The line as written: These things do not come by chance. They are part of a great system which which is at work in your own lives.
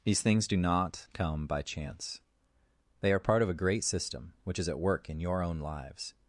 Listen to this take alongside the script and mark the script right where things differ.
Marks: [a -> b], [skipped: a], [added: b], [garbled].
These things do not come by chance. They are part of a great system which [skipped: which] is at work in your own lives.